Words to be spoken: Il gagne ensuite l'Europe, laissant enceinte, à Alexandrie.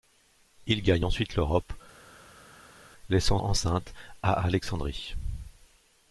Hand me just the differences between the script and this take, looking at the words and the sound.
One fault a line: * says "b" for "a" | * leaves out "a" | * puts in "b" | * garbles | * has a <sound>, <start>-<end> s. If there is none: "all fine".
all fine